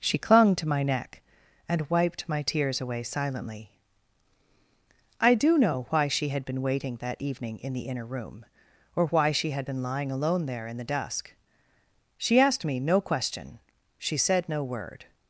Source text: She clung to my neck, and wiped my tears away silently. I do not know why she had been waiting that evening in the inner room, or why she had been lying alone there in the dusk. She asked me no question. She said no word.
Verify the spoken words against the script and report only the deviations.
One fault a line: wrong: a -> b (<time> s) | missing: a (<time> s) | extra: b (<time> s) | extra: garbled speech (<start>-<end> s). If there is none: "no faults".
missing: not (5.6 s)